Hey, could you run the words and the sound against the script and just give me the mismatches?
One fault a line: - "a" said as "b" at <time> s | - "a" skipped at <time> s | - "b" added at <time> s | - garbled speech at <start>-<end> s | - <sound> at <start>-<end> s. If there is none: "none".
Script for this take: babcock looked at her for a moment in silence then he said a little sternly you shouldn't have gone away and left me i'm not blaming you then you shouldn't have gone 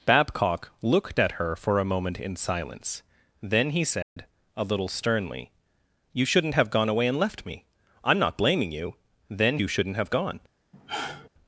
- dropout at 4.0-4.2 s
- sigh at 10.7-11.3 s